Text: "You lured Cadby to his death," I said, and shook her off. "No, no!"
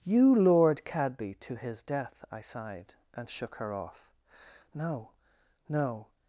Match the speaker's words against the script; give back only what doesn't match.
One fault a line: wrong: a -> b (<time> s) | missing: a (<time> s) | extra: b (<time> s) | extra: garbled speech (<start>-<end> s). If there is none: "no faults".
wrong: said -> sighed (2.4 s)